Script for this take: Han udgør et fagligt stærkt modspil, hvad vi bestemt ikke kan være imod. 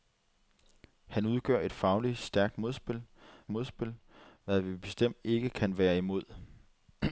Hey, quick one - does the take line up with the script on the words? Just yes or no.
no